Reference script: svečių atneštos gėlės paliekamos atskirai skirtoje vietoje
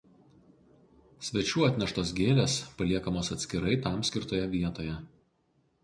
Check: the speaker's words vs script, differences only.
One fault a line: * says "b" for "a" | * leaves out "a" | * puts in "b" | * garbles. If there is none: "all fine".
* puts in "tam"